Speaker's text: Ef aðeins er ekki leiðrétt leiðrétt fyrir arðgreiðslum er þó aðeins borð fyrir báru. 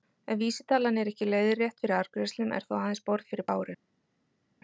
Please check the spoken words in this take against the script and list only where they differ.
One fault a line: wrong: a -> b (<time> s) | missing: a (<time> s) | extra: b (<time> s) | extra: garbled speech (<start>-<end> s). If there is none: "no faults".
wrong: aðeins -> vísitalan (0.4 s)
missing: leiðrétt (1.8 s)